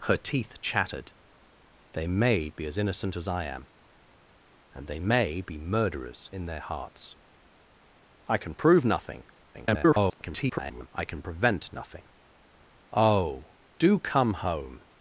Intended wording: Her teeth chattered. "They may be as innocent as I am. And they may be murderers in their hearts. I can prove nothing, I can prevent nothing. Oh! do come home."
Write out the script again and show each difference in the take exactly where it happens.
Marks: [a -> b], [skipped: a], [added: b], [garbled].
Her teeth chattered. "They may be as innocent as I am. And they may be murderers in their hearts. I can prove nothing, [garbled] I can prevent nothing. Oh! do come home."